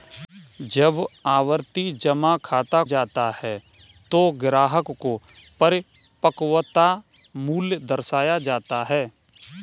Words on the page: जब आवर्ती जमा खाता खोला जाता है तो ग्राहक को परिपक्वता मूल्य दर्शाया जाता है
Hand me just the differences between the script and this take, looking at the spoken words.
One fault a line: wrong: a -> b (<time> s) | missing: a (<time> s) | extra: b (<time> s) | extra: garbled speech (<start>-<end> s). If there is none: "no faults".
missing: खोला (2.8 s)